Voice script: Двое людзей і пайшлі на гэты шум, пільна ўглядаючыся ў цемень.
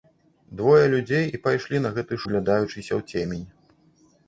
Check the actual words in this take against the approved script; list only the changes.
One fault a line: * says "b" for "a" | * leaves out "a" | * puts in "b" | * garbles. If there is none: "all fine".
* leaves out "шум пільна"